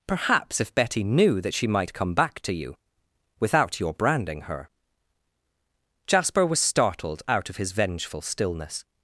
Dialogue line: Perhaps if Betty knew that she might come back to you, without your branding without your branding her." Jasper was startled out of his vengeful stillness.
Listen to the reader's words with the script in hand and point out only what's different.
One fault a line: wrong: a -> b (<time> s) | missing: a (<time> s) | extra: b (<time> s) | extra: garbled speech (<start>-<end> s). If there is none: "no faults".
missing: without your branding (4.4 s)